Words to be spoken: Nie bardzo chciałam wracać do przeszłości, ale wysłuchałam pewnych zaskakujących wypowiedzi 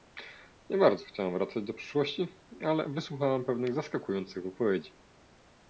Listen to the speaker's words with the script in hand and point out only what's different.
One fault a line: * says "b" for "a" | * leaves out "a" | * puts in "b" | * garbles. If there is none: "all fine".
all fine